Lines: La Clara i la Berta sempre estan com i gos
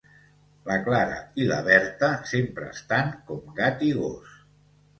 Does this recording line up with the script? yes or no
no